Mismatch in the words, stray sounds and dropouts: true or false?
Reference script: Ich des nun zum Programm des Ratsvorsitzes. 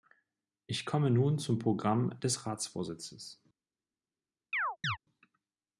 true